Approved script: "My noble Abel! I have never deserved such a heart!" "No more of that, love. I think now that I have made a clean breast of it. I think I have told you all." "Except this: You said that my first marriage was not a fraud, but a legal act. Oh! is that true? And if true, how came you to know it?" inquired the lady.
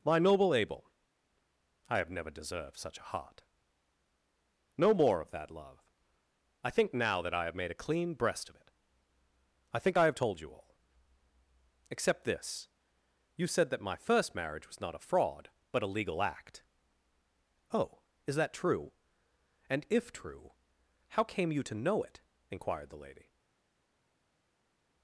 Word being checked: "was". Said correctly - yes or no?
yes